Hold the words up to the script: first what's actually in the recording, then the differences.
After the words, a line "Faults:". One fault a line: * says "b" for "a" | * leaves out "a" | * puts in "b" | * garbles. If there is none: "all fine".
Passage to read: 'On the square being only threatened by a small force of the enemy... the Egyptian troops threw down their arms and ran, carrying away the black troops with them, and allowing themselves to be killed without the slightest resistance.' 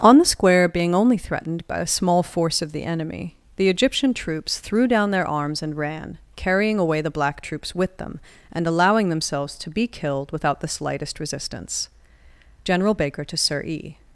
'On the square being only threatened by a small force of the enemy... the Egyptian troops threw down their arms and ran, carrying away the black troops with them, and allowing themselves to be killed without the slightest resistance.' General Baker to Sir E
Faults:
* puts in "General Baker to Sir E"